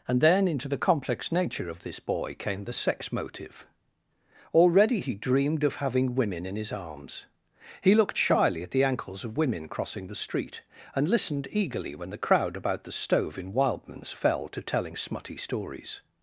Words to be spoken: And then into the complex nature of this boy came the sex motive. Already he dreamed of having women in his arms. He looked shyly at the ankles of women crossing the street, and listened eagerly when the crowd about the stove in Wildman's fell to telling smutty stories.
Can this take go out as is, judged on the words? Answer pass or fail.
pass